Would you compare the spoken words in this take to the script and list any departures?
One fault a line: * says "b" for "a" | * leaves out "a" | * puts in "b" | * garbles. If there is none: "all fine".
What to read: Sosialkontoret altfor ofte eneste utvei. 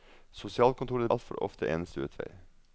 all fine